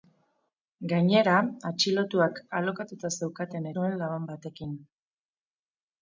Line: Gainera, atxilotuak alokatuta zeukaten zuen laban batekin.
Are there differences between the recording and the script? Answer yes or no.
no